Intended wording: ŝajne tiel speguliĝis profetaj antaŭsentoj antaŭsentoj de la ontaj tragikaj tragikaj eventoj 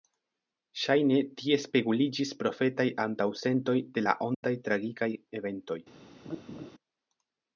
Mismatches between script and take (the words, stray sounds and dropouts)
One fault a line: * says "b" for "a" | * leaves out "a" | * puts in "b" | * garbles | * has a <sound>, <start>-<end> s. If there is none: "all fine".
* says "tie" for "tiel"
* leaves out "antaŭsentoj"
* has a dropout, 4.3-4.4 s
* leaves out "tragikaj"
* has a laugh, 6.2-6.7 s